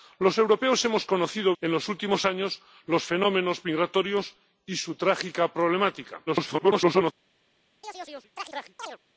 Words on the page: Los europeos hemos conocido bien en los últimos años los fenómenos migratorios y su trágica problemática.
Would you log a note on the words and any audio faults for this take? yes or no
yes